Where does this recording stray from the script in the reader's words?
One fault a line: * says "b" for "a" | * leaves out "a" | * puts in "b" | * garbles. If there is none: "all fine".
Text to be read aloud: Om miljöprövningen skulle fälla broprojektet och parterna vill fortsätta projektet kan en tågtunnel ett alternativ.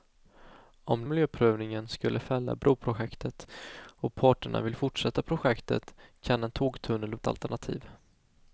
all fine